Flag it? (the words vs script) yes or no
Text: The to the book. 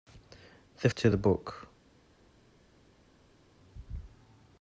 no